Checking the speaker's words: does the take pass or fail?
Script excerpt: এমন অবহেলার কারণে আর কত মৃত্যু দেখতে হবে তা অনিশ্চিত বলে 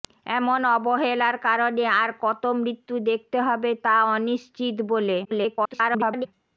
fail